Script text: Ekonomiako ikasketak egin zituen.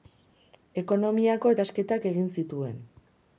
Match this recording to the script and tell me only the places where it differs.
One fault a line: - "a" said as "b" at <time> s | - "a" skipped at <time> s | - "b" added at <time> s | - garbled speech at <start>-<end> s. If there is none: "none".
none